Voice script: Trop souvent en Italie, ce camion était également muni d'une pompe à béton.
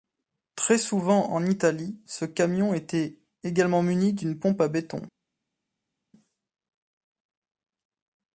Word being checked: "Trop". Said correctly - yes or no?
no